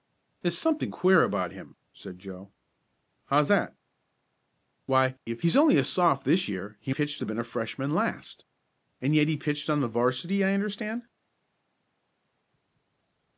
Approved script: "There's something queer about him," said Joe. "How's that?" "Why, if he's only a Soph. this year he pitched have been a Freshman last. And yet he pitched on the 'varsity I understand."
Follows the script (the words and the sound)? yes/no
yes